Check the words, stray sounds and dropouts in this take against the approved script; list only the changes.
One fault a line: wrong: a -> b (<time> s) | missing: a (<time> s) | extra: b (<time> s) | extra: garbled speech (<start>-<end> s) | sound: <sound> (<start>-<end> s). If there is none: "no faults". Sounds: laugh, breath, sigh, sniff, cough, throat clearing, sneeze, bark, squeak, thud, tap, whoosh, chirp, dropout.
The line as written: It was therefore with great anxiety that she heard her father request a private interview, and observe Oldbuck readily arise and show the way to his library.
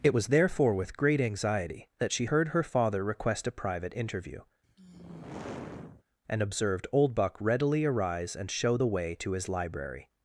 sound: sigh (4.6-6.0 s)
wrong: observe -> observed (6.4 s)